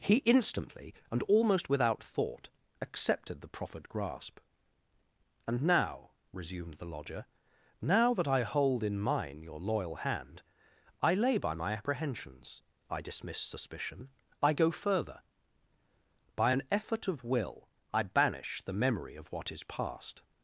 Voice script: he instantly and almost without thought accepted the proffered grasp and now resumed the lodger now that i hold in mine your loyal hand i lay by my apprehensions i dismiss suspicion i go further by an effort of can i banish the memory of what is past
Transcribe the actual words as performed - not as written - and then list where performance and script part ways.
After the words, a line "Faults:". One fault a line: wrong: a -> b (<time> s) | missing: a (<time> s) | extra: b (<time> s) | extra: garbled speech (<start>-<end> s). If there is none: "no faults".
he instantly and almost without thought accepted the proffered grasp and now resumed the lodger now that i hold in mine your loyal hand i lay by my apprehensions i dismiss suspicion i go further by an effort of will i banish the memory of what is past
Faults:
wrong: can -> will (17.2 s)